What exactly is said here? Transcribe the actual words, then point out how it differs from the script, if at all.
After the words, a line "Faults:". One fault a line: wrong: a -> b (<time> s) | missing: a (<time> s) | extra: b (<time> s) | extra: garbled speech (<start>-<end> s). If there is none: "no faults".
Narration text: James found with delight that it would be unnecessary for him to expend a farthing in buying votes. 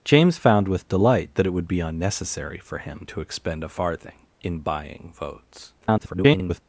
James found with delight that it would be unnecessary for him to expend a farthing in buying votes. [garbled]
Faults:
extra: garbled speech (5.8-6.6 s)